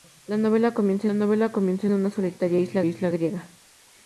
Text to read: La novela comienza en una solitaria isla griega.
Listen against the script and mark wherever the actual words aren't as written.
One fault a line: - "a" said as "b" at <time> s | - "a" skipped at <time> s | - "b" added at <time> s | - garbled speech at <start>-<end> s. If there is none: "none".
- "novela comienza" added at 1.1 s
- "isla" added at 2.8 s